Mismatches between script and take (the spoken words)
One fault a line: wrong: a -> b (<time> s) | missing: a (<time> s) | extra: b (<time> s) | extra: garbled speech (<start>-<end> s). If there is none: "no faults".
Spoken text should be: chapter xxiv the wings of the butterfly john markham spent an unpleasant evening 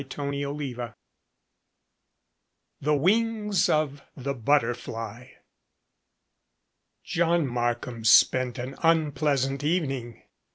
no faults